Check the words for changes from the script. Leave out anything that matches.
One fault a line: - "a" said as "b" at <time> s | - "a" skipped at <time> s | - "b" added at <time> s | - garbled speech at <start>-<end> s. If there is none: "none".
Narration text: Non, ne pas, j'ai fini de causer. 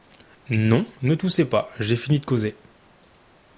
- "toussez" added at 1.1 s